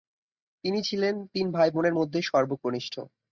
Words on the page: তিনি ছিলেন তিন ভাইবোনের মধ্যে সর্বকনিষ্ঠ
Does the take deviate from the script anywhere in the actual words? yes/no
no